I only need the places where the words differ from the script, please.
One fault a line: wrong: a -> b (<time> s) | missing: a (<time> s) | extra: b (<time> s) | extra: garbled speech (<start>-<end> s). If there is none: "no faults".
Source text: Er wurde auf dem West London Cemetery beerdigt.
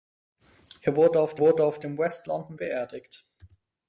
extra: wurde auf (1.4 s)
missing: Cemetery (2.6 s)